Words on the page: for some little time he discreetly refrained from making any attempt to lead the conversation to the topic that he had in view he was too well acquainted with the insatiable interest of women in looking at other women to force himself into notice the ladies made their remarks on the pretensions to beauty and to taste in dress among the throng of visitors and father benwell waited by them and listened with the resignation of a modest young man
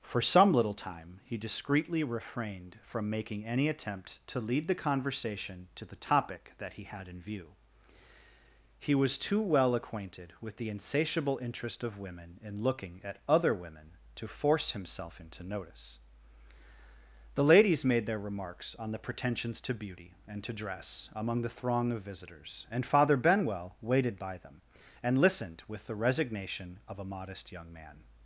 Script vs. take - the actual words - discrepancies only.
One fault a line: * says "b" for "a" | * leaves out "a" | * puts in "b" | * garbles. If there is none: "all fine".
* leaves out "taste in"